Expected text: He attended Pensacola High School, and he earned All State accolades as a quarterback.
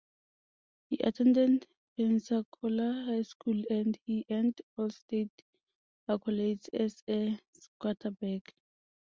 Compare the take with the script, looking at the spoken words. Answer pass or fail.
pass